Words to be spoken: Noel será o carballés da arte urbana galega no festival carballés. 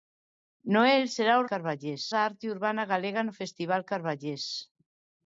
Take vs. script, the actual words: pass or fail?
pass